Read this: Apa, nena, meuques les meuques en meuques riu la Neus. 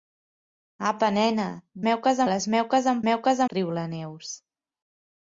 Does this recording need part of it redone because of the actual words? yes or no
no